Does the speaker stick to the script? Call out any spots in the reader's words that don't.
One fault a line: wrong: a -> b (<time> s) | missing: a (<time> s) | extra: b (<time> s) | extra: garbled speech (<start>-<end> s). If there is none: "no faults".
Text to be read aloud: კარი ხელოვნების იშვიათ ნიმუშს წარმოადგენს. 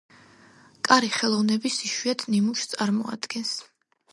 no faults